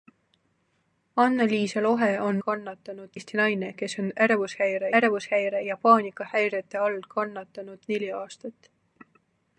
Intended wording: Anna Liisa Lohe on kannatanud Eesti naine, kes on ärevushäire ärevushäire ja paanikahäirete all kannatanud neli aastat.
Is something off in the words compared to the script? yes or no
no